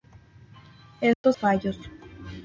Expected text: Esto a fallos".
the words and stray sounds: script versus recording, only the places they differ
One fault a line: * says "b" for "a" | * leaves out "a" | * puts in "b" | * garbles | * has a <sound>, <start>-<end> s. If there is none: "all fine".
* has a dropout, 1.1-1.2 s